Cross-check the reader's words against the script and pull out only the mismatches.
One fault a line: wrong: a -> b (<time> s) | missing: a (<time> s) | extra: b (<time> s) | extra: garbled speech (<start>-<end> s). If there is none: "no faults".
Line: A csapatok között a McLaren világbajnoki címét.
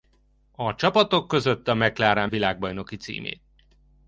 no faults